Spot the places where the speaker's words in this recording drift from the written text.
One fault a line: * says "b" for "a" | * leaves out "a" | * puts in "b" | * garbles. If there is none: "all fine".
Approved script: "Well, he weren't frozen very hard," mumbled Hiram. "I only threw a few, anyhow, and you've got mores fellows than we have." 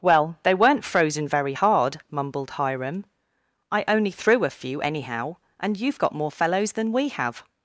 * says "they" for "he"
* says "more" for "mores"